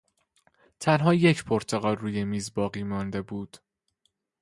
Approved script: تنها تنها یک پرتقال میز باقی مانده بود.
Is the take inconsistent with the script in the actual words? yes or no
yes